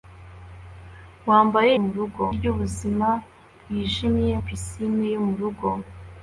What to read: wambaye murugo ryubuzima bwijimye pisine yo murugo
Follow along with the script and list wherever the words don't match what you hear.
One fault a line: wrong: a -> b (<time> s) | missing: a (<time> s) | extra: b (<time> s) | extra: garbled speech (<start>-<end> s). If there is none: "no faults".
no faults